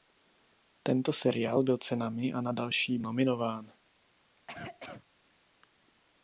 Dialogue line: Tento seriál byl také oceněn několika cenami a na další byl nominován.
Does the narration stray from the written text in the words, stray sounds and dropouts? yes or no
yes